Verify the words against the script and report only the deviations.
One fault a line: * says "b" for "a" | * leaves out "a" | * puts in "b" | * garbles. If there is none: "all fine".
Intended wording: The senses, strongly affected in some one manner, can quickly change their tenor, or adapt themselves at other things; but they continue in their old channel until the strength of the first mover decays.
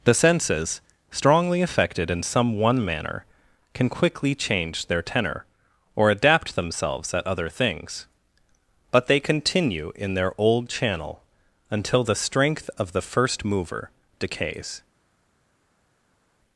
all fine